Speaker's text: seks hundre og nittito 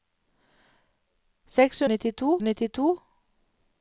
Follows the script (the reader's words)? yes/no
no